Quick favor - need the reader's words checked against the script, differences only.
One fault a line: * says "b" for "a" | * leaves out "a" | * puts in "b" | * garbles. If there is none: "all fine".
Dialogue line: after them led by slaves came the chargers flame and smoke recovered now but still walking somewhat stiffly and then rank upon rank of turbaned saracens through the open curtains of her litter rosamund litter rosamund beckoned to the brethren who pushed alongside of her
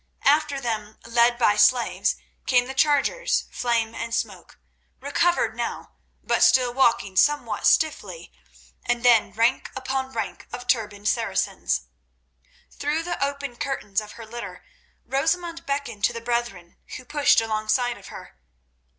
* leaves out "litter rosamund"